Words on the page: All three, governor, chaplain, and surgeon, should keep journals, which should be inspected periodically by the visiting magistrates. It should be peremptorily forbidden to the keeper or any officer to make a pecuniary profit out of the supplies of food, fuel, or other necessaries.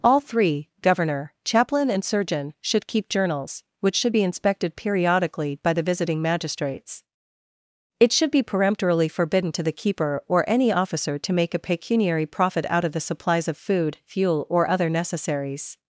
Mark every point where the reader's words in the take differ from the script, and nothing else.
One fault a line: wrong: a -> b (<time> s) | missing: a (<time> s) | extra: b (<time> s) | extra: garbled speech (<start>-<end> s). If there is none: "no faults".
no faults